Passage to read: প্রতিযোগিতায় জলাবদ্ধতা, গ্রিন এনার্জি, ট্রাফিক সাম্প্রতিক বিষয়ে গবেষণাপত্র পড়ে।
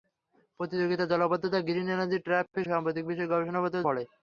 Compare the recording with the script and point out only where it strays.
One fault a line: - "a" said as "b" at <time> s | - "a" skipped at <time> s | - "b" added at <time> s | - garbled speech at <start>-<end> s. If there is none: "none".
none